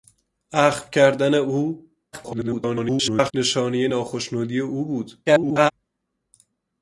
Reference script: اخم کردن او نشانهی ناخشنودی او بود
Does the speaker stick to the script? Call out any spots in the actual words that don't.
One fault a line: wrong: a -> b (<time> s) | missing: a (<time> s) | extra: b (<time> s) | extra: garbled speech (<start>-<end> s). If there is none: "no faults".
extra: garbled speech (2.1-3.3 s)
extra: garbled speech (5.3-5.7 s)